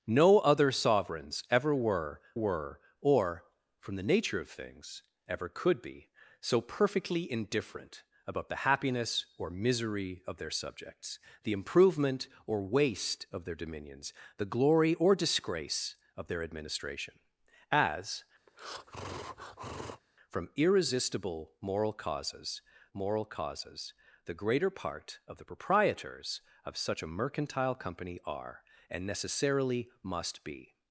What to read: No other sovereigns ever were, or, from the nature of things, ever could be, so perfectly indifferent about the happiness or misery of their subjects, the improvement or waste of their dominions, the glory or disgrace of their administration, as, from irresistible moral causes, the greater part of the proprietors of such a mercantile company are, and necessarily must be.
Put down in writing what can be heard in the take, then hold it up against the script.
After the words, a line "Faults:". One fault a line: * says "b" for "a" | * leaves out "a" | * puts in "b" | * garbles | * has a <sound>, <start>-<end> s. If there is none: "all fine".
No other sovereigns ever were were, or, from the nature of things, ever could be, so perfectly indifferent about the happiness or misery of their subjects, the improvement or waste of their dominions, the glory or disgrace of their administration, as, from irresistible moral causes moral causes, the greater part of the proprietors of such a mercantile company are, and necessarily must be.
Faults:
* puts in "were"
* has a breath, 18.5-20.0 s
* puts in "moral causes"